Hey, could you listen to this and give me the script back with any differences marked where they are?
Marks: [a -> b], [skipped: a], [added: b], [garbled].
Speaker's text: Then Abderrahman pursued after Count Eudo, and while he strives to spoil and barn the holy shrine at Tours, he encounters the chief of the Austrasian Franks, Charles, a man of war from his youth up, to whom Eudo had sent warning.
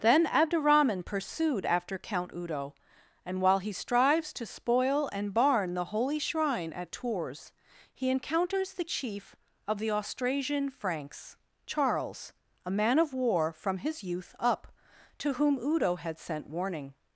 Then Abderrahman pursued after Count Eudo, and while he strives to spoil and barn the holy shrine at Tours, he encounters the chief of the Austrasian Franks, Charles, a man of war from his youth up, to whom Eudo had sent warning.